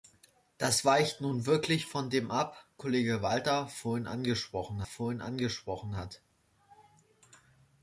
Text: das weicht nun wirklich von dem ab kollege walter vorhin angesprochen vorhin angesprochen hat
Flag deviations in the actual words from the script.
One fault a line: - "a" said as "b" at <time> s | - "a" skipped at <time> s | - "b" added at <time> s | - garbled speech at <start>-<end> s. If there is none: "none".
none